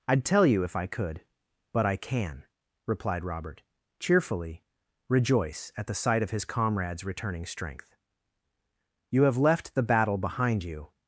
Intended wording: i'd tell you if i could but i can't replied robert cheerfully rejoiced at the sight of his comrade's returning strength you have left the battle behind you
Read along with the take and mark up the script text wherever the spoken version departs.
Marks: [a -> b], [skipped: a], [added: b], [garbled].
i'd tell you if i could but i [can't -> can] replied robert cheerfully [rejoiced -> rejoice] at the sight of his comrade's returning strength you have left the battle behind you